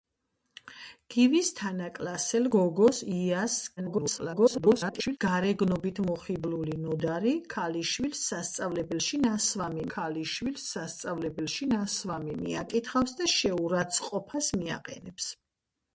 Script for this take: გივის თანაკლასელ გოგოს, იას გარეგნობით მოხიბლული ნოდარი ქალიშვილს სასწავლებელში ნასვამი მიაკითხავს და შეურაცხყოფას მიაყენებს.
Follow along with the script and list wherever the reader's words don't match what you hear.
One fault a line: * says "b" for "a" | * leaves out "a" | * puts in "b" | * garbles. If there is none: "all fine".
* garbles
* puts in "ქალიშვილს სასწავლებელში ნასვამი"